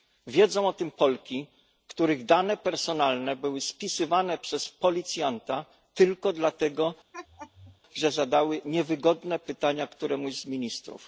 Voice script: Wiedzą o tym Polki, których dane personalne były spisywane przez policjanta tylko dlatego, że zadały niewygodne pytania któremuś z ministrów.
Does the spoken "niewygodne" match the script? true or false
true